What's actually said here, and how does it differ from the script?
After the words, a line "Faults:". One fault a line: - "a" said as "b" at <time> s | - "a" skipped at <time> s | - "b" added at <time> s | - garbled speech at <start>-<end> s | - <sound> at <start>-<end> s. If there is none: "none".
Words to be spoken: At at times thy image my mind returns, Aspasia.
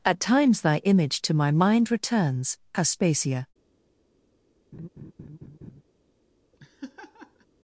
At times thy image to my mind returns, Aspasia.
Faults:
- "at" skipped at 0.2 s
- "to" added at 1.2 s
- laugh at 4.7-5.8 s
- laugh at 6.5-7.5 s